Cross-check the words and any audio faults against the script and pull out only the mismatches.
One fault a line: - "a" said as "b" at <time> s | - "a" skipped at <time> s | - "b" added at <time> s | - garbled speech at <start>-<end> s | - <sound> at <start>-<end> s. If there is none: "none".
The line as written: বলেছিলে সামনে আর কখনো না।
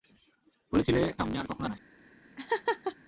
- laugh at 2.4-3.0 s